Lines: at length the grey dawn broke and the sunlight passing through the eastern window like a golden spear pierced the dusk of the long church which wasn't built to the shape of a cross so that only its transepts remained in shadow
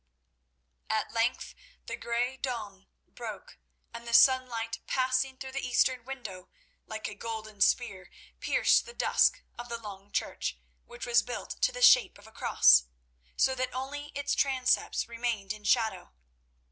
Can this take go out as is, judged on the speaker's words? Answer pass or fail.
fail